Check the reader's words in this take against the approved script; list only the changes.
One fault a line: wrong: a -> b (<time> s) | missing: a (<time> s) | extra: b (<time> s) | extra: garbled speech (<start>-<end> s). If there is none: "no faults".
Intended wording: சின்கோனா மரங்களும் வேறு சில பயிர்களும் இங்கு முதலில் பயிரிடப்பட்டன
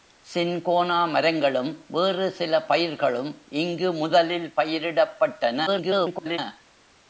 extra: garbled speech (5.7-6.4 s)